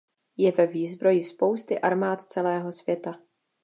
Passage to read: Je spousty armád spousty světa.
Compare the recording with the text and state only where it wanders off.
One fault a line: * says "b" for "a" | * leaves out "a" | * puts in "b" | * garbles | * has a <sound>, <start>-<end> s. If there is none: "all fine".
* puts in "ve výzbroji"
* says "celého" for "spousty"